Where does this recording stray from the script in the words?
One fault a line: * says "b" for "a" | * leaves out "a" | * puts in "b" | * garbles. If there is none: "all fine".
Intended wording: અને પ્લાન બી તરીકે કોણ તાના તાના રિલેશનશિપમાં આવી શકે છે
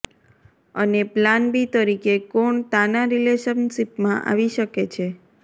* leaves out "તાના"